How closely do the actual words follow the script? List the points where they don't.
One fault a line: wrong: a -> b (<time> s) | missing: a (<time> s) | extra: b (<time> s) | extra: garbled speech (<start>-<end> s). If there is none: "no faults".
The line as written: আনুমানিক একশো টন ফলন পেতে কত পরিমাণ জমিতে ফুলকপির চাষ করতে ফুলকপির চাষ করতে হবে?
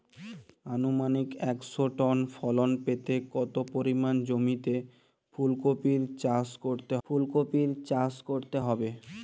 no faults